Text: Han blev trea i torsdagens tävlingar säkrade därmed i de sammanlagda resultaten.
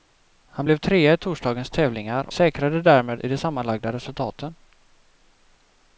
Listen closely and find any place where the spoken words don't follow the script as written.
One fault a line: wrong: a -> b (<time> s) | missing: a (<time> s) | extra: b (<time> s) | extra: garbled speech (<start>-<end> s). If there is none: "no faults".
no faults